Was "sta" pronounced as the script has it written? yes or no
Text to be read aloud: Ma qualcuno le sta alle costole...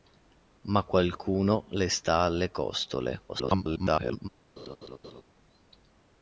yes